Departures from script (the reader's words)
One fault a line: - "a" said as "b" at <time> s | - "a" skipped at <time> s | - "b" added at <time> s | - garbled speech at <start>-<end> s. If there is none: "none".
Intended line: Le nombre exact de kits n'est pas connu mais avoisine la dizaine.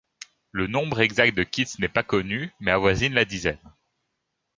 none